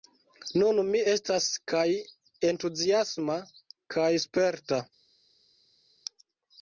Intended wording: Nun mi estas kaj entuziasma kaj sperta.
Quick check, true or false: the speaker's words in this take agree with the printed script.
true